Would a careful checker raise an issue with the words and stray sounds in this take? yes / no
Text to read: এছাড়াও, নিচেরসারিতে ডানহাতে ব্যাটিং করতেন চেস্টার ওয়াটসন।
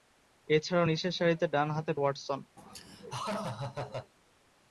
yes